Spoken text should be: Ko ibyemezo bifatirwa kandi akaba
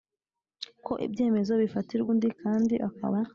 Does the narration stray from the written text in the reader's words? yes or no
yes